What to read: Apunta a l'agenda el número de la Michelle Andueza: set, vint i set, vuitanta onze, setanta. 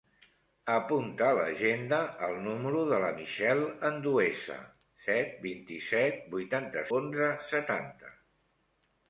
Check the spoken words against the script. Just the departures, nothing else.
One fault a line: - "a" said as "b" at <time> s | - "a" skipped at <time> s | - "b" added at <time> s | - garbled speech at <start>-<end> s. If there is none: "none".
none